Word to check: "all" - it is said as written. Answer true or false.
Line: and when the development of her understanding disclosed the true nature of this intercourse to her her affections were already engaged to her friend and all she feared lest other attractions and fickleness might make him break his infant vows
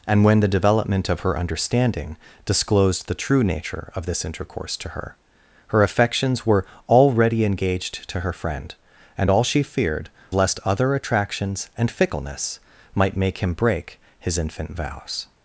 true